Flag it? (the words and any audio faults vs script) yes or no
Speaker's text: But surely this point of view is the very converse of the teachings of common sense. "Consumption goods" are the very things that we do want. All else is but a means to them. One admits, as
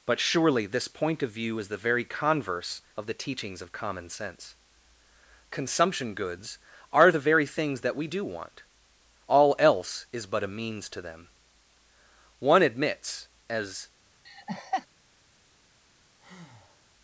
yes